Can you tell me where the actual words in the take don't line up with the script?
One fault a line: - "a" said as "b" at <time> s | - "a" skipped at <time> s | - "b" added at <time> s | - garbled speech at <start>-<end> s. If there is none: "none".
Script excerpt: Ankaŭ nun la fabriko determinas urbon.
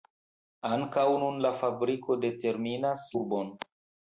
none